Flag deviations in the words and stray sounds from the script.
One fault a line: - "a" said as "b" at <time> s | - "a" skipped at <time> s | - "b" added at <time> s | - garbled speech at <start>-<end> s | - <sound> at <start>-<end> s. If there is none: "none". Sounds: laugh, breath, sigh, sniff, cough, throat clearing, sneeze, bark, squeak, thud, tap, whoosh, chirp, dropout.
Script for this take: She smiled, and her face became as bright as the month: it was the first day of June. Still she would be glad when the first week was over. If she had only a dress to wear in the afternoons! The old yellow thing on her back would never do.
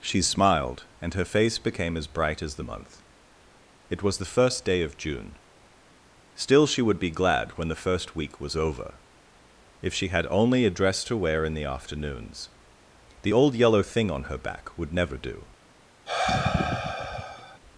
- sigh at 16.1-17.6 s